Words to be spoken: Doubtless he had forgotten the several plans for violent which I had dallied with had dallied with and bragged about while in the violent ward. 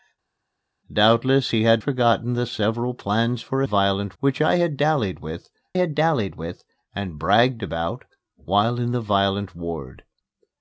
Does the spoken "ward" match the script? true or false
true